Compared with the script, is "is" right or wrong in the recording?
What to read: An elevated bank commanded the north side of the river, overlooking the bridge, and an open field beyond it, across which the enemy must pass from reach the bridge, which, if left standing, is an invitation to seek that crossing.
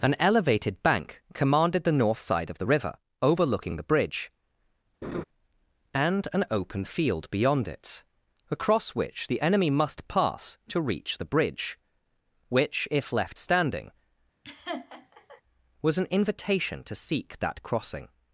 wrong